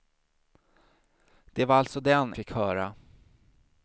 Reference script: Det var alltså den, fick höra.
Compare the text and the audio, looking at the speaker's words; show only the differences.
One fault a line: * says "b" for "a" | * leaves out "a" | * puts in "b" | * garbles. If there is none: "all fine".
all fine